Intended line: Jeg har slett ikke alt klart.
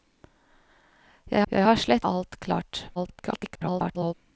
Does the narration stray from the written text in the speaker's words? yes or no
yes